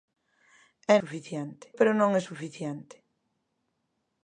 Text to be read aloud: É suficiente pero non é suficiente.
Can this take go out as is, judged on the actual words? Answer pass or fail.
pass